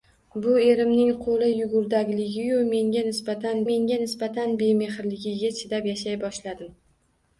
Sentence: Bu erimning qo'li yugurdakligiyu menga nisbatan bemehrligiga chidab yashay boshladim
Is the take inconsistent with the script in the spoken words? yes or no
yes